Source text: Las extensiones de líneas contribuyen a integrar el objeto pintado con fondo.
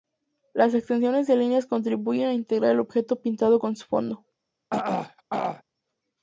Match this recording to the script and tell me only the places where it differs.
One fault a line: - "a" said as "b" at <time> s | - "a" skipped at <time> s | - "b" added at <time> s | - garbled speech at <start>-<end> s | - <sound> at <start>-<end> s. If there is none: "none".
- "su" added at 3.8 s
- throat clearing at 4.7-5.6 s